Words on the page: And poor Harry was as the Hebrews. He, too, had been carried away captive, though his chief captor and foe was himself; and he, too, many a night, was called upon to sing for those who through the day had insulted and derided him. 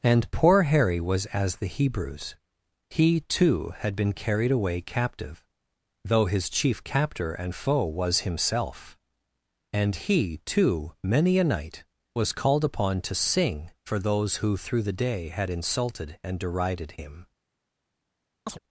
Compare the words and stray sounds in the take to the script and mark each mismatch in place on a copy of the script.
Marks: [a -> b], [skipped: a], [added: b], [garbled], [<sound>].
And poor Harry was as the Hebrews. He, too, had been carried away captive, though his chief captor and foe was himself; and he, too, many a night, was called upon to sing for those who through the day had insulted and derided him. [chirp]